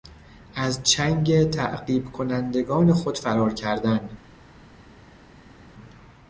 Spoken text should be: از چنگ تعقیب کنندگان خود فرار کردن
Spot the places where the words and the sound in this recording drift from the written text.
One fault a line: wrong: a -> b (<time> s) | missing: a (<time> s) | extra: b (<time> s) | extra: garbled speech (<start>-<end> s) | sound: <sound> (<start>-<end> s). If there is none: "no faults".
no faults